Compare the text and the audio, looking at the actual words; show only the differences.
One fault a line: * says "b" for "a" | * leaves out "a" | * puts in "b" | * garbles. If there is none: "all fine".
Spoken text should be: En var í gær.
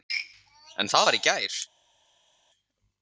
* puts in "það"